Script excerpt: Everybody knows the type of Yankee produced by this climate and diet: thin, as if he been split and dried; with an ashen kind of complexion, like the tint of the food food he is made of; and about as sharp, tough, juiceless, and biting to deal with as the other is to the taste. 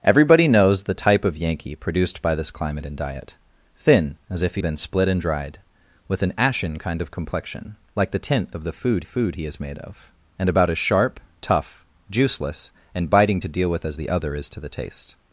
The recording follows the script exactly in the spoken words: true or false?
true